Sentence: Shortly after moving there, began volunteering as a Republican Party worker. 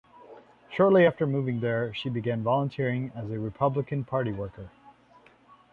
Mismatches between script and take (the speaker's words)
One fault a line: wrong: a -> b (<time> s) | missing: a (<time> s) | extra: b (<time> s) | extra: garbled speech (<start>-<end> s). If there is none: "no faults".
extra: she (1.9 s)